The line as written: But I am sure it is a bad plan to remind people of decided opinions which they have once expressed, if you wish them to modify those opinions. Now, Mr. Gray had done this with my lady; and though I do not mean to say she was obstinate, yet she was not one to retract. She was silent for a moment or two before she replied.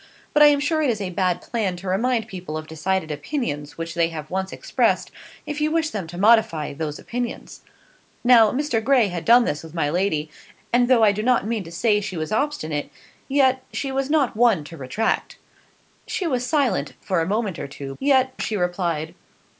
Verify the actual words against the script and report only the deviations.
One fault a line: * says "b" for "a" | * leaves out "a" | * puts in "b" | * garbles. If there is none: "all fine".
* says "yet" for "before"